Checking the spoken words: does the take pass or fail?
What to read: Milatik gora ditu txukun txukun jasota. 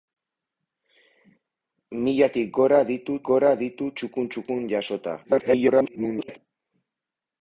fail